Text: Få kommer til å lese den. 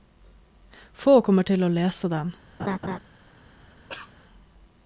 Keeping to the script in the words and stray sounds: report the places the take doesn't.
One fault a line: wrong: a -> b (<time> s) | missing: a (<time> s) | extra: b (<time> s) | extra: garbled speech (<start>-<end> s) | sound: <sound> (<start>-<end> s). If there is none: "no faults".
sound: laugh (2.6-3.0 s)
sound: cough (3.9-4.1 s)